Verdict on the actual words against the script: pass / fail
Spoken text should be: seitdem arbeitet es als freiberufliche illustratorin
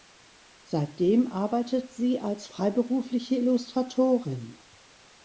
fail